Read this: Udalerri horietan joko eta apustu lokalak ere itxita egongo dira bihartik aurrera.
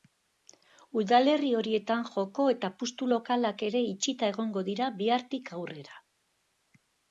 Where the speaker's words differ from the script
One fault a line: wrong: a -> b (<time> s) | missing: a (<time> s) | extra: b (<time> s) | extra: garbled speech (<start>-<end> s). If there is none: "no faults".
no faults